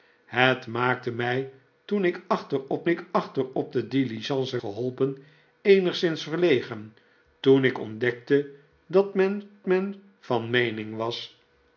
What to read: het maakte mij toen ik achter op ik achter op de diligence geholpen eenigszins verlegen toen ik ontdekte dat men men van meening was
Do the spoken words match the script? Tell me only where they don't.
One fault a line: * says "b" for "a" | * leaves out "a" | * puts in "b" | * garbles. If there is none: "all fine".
all fine